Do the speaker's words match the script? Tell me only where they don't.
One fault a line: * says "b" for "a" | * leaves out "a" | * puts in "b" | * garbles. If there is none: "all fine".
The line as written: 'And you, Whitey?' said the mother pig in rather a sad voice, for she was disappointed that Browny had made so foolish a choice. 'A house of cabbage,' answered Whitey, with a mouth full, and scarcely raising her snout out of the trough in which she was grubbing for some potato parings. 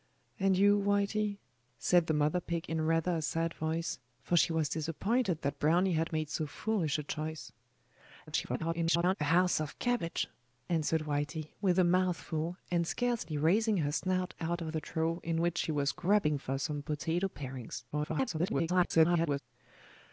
* garbles
* garbles